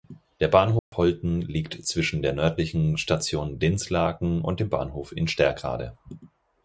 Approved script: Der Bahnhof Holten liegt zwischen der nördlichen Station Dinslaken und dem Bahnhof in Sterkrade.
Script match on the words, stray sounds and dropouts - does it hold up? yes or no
no